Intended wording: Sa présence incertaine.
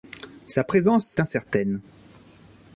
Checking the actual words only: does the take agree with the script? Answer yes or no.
yes